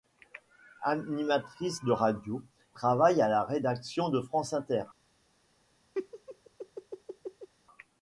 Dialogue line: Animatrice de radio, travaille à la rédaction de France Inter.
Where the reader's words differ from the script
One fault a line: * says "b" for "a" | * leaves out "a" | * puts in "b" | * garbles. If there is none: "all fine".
all fine